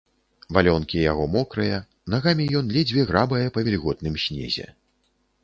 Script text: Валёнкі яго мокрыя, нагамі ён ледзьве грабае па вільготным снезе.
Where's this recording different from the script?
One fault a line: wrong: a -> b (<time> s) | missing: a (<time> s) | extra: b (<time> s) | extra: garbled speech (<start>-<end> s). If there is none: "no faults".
no faults